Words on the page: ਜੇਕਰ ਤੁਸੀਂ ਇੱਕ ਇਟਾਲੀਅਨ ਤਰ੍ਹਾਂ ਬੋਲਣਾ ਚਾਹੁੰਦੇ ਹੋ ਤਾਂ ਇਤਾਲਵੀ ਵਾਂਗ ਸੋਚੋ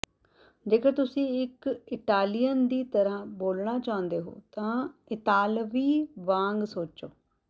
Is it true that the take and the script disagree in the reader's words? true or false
true